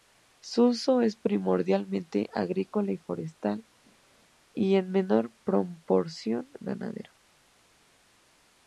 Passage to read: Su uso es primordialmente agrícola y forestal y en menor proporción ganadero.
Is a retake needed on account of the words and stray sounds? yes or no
no